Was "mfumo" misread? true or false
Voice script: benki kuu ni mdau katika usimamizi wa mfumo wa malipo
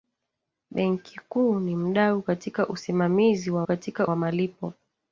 true